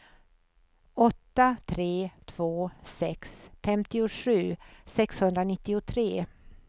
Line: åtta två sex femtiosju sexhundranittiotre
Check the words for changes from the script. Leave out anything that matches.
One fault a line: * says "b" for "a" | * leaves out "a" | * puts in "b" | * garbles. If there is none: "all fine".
* puts in "tre"